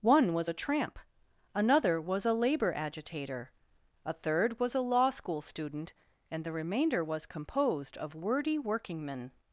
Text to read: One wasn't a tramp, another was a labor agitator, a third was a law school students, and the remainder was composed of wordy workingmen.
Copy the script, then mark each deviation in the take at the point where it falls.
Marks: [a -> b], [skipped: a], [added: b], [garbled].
One [wasn't -> was] a tramp, another was a labor agitator, a third was a law school [students, -> student] and the remainder was composed of wordy workingmen.